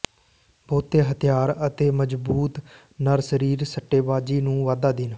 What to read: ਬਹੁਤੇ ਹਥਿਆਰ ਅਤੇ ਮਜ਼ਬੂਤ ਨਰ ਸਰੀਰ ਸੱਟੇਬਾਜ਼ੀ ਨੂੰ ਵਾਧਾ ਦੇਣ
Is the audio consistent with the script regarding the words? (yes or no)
yes